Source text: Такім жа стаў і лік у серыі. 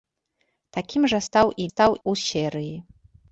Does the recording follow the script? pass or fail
fail